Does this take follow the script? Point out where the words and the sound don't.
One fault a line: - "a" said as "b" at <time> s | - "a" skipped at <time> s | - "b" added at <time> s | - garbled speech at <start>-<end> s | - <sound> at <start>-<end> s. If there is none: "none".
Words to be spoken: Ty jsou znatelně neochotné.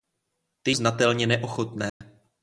- "jsou" skipped at 0.7 s
- dropout at 1.9-2.0 s